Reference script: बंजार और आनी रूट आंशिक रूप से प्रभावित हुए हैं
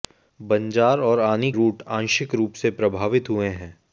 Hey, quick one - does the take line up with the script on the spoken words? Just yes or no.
yes